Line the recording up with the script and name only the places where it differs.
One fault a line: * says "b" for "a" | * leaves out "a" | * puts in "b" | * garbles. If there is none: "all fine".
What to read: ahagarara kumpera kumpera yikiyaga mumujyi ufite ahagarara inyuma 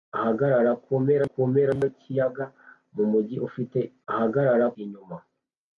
all fine